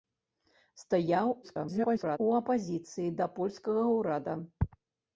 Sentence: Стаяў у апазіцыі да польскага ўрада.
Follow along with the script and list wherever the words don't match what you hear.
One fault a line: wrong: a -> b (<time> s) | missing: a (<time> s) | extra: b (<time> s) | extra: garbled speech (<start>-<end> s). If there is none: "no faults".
extra: garbled speech (1.4-2.2 s)